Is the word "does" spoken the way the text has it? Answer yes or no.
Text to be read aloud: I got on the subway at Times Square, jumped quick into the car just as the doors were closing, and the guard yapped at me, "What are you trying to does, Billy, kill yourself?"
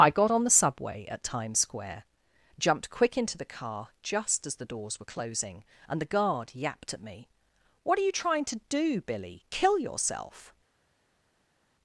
no